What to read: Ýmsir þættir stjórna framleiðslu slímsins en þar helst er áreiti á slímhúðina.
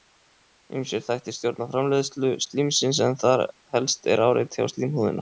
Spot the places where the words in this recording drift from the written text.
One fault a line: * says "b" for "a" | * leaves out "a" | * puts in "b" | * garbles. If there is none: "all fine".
all fine